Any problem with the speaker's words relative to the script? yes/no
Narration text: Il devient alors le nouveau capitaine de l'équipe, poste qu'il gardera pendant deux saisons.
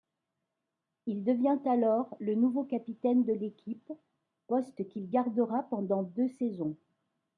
no